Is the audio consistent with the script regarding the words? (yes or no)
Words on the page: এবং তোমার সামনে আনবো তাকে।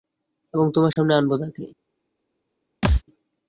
yes